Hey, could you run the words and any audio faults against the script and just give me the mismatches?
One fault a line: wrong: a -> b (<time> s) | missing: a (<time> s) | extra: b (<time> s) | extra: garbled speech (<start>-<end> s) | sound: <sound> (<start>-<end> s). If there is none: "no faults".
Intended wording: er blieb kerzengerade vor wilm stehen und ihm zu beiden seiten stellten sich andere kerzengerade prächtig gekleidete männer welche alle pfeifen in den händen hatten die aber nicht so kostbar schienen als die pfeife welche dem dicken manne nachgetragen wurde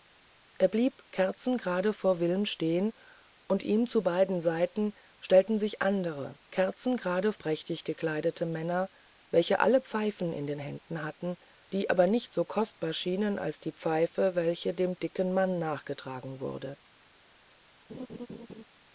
sound: laugh (17.9-18.6 s)